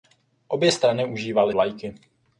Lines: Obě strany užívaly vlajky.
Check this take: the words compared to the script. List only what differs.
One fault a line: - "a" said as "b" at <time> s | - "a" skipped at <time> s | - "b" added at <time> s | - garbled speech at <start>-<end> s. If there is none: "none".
none